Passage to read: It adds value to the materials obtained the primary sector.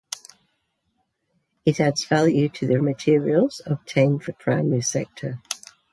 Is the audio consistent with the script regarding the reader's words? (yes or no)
yes